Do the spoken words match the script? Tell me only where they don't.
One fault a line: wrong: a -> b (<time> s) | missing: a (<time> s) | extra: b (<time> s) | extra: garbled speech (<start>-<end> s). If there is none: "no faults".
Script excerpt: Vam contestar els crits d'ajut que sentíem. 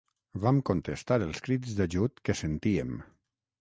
no faults